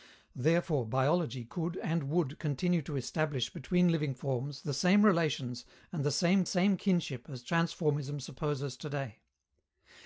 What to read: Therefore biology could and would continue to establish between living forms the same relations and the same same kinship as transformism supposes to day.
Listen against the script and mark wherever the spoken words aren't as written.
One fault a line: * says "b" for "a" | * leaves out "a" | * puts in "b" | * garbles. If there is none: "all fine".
all fine